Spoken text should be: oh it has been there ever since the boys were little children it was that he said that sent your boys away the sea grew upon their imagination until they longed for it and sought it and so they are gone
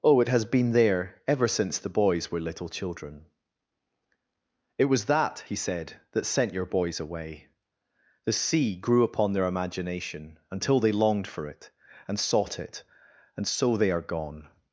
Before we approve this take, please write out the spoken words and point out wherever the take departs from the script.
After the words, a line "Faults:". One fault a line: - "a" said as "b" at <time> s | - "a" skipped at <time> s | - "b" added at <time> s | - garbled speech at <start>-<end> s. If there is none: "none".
oh it has been there ever since the boys were little children it was that he said that sent your boys away the sea grew upon their imagination until they longed for it and sought it and so they are gone
Faults:
none